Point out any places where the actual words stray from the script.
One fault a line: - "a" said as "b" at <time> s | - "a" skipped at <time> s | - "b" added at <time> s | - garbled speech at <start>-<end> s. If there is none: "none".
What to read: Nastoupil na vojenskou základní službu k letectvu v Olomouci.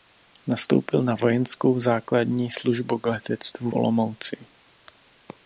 - "v" skipped at 3.7 s